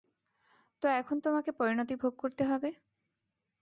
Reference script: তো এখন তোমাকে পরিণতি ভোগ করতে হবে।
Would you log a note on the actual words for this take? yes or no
no